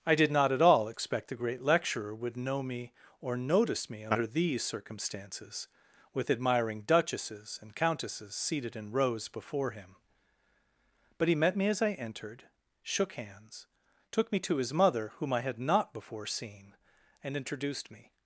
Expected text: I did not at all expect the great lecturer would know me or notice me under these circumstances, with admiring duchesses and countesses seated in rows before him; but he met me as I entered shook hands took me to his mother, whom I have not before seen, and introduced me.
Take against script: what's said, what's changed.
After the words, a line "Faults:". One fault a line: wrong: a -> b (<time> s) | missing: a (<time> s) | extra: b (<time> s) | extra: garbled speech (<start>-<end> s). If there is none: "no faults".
I did not at all expect the great lecturer would know me or notice me under these circumstances, with admiring duchesses and countesses seated in rows before him; but he met me as I entered shook hands took me to his mother, whom I had not before seen, and introduced me.
Faults:
wrong: have -> had (15.4 s)